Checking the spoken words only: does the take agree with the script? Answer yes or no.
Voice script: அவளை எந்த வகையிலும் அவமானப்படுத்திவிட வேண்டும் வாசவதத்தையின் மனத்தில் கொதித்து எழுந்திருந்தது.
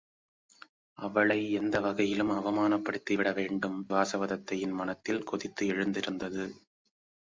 yes